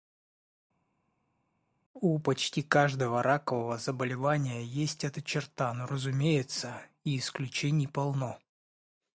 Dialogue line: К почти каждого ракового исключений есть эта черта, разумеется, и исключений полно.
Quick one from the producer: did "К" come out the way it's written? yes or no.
no